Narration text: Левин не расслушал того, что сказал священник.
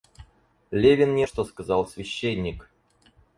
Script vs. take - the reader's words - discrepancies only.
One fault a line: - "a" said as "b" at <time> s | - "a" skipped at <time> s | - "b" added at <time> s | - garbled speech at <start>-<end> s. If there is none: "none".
- "расслушал того" skipped at 1.3 s